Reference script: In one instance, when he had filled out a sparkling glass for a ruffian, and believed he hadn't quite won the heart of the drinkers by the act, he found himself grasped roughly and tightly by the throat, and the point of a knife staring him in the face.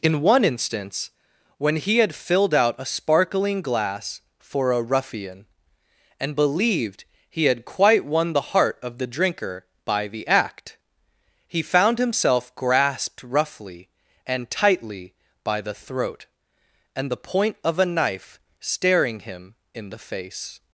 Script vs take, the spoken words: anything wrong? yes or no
yes